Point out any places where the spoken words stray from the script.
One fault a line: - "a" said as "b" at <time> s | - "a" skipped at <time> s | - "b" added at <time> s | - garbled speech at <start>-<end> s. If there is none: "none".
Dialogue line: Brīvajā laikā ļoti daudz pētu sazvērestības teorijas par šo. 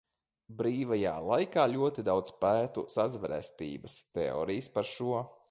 none